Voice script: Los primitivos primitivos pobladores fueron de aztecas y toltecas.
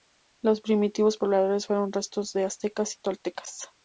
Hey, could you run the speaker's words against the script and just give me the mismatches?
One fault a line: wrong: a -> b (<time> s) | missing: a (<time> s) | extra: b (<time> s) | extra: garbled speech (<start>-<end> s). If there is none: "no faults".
missing: primitivos (1.2 s)
extra: restos (1.9 s)